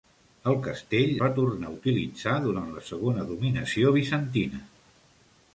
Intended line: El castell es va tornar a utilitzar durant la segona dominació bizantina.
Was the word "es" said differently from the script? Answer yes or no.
yes